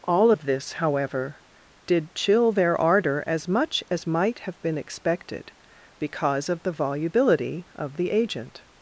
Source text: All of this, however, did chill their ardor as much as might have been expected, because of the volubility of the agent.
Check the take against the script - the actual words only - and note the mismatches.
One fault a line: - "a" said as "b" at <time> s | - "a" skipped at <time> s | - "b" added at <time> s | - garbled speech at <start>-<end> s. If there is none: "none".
none